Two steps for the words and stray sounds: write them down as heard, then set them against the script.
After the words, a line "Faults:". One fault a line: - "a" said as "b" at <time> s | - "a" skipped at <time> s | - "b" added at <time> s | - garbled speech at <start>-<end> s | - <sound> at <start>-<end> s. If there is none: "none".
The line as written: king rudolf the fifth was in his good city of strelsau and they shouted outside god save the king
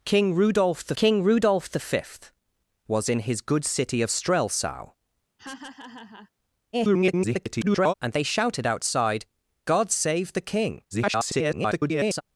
king rudolf the king rudolf the fifth was in his good city of strelsau [garbled] and they shouted outside god save the king [garbled]
Faults:
- "king rudolf the" added at 1.0 s
- laugh at 5.4-6.3 s
- garbled speech at 6.7-7.9 s
- garbled speech at 10.9-12.2 s